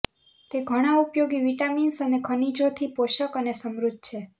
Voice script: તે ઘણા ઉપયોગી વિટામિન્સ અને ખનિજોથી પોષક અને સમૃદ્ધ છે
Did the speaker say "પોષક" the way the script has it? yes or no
yes